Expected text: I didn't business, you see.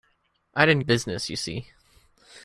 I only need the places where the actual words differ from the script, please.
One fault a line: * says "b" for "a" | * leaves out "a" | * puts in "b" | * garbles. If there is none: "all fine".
all fine